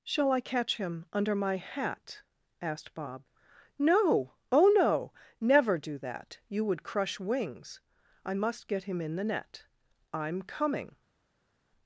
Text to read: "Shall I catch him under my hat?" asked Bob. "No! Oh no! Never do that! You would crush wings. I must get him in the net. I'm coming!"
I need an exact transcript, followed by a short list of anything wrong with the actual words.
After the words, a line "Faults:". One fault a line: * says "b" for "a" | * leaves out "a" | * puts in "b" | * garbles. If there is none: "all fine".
"Shall I catch him under my hat?" asked Bob. "No! Oh no! Never do that! You would crush wings. I must get him in the net. I'm coming!"
Faults:
all fine